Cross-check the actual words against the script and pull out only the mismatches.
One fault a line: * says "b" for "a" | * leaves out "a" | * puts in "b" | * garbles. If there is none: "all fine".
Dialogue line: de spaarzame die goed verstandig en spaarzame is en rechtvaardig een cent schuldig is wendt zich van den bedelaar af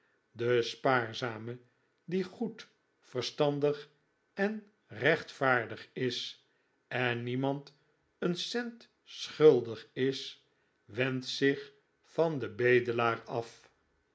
* says "rechtvaardig" for "spaarzame"
* says "niemand" for "rechtvaardig"